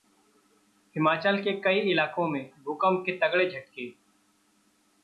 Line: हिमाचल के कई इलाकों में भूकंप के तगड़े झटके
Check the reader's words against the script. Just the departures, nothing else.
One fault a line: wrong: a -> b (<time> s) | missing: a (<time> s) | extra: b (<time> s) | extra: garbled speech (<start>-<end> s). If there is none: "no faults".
no faults